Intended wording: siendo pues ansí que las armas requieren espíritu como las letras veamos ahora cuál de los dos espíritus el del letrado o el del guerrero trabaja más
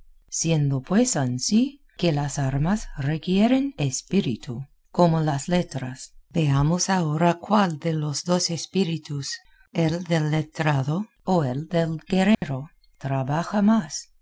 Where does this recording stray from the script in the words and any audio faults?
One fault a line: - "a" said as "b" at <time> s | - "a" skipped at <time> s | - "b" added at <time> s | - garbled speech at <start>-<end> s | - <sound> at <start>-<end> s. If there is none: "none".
- dropout at 12.3-12.4 s